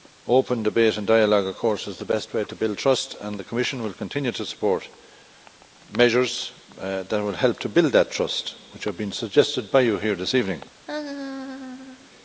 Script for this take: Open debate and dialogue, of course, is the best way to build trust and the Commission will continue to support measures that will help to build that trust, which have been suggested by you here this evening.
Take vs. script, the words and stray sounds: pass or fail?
fail